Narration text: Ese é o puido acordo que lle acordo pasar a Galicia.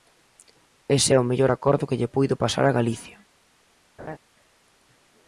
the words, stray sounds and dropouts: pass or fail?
fail